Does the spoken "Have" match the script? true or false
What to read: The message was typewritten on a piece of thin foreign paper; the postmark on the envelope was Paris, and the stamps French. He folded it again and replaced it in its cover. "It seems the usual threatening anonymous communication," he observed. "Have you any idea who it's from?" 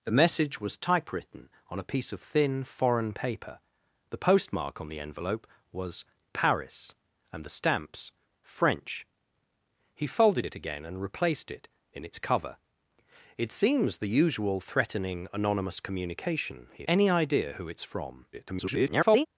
false